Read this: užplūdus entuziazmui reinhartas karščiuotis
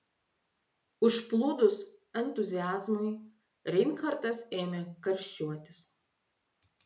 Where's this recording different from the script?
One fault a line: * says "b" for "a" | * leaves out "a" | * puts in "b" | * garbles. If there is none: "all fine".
* puts in "ėmė"